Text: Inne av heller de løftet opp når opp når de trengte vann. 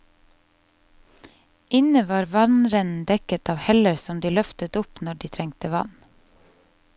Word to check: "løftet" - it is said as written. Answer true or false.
true